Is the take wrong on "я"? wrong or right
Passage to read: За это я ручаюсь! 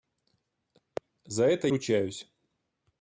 wrong